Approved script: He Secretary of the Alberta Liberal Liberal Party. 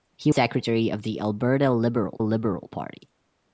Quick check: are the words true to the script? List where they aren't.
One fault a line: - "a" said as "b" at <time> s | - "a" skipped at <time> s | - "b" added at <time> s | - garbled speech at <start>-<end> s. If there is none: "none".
none